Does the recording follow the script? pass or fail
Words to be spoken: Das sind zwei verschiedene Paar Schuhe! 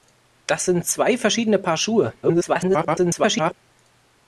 fail